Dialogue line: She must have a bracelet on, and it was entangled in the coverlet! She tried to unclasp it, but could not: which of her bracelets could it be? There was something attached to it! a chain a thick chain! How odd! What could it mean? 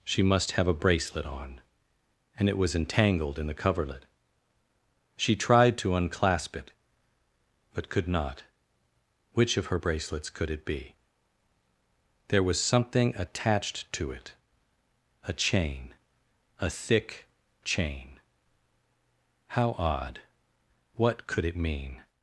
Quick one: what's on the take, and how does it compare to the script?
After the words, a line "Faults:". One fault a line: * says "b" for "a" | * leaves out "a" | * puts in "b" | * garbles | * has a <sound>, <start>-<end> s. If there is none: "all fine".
She must have a bracelet on, and it was entangled in the coverlet! She tried to unclasp it, but could not: which of her bracelets could it be? There was something attached to it! a chain a thick chain! How odd! What could it mean?
Faults:
all fine